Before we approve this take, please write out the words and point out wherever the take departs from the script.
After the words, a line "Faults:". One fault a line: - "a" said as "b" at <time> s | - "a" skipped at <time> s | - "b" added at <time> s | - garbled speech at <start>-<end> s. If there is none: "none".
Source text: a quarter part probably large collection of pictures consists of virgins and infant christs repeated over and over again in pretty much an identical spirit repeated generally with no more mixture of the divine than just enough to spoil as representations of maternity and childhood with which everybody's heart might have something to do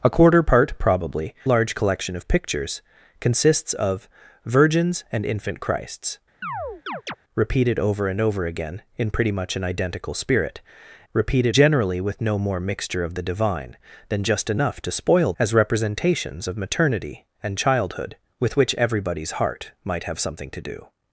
a quarter part probably large collection of pictures consists of virgins and infant christs repeated over and over again in pretty much an identical spirit repeated generally with no more mixture of the divine than just enough to spoil as representations of maternity and childhood with which everybody's heart might have something to do
Faults:
none